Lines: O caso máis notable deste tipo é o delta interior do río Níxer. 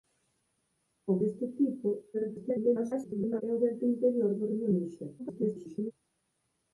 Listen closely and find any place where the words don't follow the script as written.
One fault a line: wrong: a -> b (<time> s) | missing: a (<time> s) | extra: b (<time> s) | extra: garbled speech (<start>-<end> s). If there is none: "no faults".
missing: caso máis notable (1.1 s)
extra: garbled speech (2.1-3.4 s)
extra: garbled speech (5.2-5.9 s)